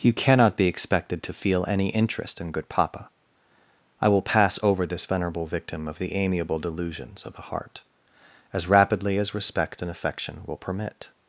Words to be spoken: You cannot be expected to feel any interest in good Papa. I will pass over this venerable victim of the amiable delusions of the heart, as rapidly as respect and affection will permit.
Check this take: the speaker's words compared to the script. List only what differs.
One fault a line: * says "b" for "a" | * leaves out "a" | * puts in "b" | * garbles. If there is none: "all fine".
all fine